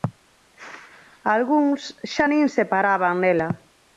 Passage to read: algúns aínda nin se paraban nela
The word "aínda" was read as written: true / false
false